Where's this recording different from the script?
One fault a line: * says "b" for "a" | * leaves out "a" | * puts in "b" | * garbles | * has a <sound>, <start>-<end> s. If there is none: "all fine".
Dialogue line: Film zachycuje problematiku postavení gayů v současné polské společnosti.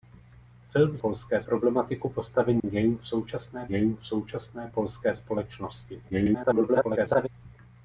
* says "polské" for "zachycuje"
* has a dropout, 2.6-2.6 s
* puts in "gayů v současné"
* garbles